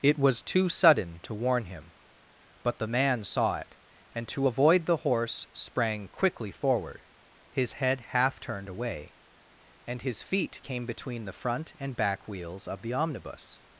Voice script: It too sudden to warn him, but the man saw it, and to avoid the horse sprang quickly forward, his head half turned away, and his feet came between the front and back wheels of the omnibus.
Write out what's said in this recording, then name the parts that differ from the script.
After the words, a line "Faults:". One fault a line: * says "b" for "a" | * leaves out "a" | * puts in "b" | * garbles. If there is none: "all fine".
It was too sudden to warn him, but the man saw it, and to avoid the horse sprang quickly forward, his head half turned away, and his feet came between the front and back wheels of the omnibus.
Faults:
* puts in "was"